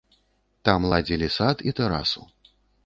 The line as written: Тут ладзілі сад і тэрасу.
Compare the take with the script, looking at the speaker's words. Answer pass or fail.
fail